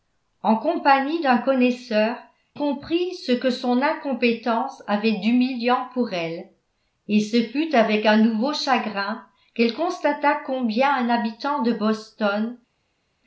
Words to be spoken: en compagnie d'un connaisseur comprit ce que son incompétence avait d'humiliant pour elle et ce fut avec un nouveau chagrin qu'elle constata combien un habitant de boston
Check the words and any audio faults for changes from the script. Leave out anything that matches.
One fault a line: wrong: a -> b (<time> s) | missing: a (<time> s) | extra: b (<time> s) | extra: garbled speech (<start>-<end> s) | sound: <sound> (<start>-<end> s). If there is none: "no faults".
no faults